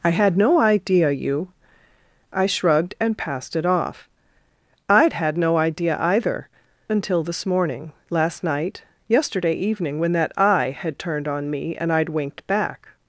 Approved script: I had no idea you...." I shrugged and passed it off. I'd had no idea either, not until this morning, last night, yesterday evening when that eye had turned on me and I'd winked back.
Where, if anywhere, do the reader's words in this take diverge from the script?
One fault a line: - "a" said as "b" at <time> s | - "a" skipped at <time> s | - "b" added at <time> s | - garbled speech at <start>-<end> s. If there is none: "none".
- "not" skipped at 6.5 s